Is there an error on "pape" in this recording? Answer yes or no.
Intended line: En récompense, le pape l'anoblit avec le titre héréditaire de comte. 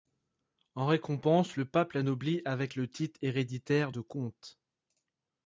no